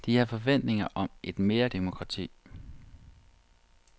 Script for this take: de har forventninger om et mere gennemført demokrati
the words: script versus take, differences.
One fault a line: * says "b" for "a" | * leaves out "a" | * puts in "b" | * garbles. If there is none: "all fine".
* leaves out "gennemført"